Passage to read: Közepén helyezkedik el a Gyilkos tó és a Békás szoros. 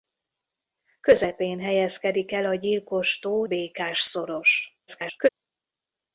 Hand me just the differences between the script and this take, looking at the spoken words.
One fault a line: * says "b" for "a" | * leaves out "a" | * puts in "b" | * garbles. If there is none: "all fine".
* leaves out "és a"
* garbles